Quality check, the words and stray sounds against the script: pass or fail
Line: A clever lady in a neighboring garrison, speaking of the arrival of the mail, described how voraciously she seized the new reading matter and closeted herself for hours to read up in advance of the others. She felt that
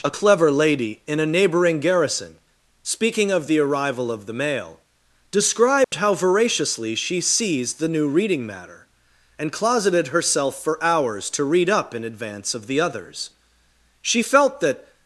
fail